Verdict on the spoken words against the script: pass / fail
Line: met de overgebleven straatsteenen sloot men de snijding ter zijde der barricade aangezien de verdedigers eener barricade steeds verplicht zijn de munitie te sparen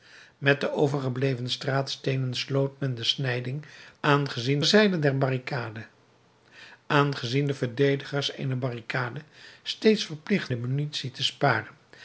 fail